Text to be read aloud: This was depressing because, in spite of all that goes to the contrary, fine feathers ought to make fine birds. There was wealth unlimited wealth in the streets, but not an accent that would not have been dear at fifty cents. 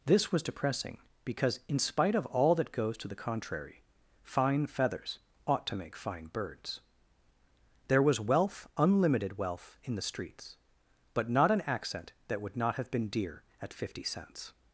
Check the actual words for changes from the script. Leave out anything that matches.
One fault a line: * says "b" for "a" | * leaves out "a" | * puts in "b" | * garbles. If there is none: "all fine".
all fine